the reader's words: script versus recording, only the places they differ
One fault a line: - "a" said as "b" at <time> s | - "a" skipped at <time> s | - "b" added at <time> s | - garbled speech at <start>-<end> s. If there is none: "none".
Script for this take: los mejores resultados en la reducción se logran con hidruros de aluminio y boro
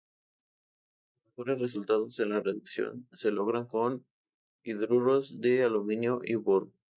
none